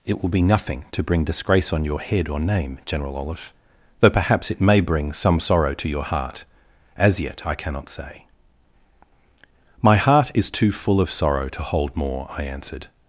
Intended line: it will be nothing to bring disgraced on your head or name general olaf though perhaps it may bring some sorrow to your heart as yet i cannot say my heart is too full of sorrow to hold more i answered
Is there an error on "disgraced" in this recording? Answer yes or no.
yes